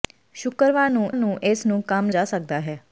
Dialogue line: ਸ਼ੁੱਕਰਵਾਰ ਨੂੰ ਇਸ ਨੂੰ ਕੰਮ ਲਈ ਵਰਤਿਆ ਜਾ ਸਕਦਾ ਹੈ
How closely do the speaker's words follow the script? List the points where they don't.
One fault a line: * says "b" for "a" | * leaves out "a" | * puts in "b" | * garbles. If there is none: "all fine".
* puts in "ਨੂੰ"
* leaves out "ਲਈ ਵਰਤਿਆ"